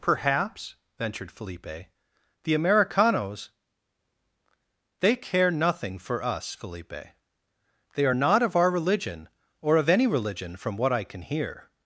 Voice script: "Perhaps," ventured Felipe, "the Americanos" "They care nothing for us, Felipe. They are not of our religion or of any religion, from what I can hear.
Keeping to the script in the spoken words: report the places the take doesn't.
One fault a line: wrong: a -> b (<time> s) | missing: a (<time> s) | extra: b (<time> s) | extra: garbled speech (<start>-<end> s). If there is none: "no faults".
no faults